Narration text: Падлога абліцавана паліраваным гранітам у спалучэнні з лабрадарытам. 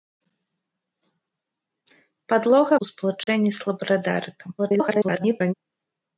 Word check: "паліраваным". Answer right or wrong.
wrong